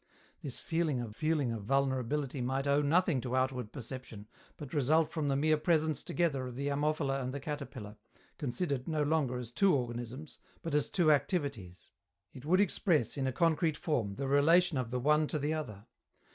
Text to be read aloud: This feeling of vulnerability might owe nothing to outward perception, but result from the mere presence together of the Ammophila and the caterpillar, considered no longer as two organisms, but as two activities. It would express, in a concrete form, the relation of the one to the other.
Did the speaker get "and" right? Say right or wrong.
right